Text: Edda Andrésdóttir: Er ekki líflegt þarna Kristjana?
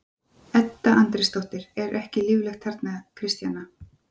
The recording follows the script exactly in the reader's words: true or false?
true